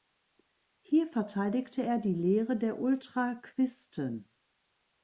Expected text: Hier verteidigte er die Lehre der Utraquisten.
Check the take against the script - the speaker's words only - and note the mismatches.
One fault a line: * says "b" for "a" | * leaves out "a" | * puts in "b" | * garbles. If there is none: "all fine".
all fine